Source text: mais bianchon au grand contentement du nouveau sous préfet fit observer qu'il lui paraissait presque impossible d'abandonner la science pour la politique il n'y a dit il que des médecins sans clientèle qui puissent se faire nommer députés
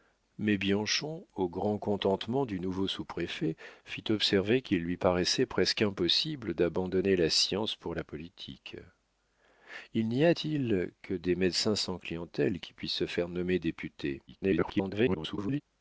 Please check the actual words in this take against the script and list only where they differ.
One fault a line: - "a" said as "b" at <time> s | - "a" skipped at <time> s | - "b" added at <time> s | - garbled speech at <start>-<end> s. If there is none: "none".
- "dit" skipped at 10.3 s
- garbled speech at 14.3-15.6 s